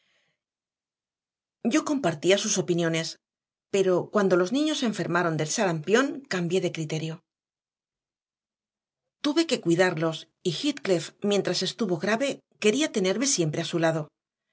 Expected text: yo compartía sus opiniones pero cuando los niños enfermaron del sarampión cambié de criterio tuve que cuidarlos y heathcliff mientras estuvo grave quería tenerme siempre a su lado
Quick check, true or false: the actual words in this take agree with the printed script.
true